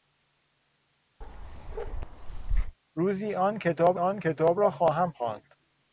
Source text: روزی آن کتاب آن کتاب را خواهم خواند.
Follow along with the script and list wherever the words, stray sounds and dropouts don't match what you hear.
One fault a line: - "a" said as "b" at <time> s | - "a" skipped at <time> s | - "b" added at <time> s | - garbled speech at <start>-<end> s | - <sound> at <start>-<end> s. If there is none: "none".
- bark at 1.2-2.8 s